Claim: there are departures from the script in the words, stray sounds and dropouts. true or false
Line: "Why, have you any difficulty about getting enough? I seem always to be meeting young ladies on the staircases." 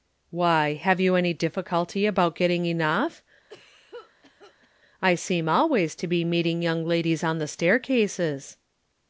true